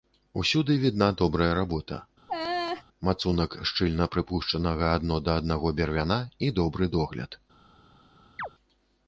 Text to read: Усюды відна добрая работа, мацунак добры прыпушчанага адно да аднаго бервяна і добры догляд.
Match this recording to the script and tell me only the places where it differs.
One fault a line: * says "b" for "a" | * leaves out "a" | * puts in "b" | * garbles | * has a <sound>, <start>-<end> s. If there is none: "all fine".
* has a laugh, 2.3-2.8 s
* says "шчыльна" for "добры"
* has a chirp, 8.4-8.5 s